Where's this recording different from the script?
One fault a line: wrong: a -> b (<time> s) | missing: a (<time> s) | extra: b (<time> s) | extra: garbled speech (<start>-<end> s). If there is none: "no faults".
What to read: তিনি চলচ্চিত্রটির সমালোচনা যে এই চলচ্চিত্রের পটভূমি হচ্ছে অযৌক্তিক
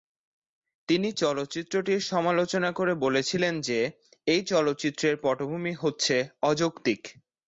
extra: করে বলেছিলেন (2.7 s)